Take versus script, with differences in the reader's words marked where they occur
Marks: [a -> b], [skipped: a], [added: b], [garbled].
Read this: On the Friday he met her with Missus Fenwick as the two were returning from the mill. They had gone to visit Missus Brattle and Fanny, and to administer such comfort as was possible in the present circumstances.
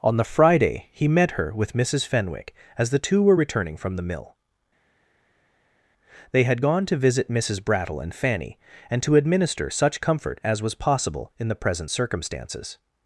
On the Friday he met her with Missus Fenwick as the two were returning from the mill. They had gone to visit Missus Brattle and Fanny, and to administer such comfort as was possible in the present circumstances.